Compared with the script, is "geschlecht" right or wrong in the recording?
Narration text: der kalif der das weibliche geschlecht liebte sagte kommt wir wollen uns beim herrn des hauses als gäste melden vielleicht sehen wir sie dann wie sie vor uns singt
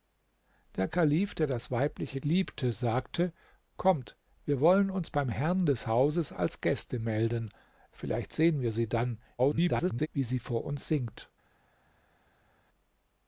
wrong